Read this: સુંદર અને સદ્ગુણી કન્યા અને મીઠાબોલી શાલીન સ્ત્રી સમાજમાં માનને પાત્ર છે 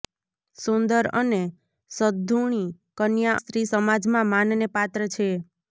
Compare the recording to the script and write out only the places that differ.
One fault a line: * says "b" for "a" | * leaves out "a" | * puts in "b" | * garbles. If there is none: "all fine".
* leaves out "અને મીઠાબોલી શાલીન"